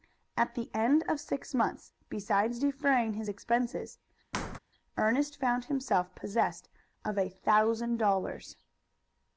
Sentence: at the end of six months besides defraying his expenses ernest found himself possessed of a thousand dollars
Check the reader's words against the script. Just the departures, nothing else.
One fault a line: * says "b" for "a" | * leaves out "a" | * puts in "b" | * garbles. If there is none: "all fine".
all fine